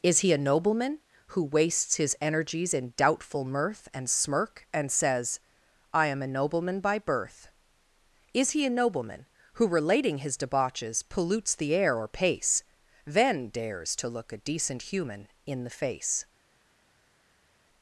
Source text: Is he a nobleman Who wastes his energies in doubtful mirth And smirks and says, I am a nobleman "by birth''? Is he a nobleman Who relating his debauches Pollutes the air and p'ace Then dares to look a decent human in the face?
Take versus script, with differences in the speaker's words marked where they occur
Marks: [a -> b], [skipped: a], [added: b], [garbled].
Is he a nobleman Who wastes his energies in doubtful mirth And [smirks -> smirk] and says, I am a nobleman "by birth''? Is he a nobleman Who relating his debauches Pollutes the air [and -> or] p'ace Then dares to look a decent human in the face?